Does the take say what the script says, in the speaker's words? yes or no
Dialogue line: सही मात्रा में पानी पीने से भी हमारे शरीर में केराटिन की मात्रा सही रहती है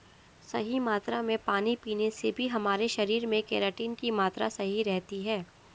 yes